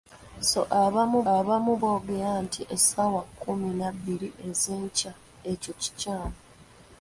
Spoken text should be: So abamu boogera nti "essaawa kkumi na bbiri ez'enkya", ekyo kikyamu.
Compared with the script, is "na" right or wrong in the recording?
right